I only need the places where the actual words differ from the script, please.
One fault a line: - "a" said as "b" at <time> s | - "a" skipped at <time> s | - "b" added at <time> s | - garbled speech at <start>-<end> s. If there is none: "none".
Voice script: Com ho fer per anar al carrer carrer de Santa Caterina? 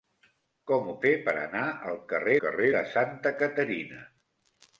none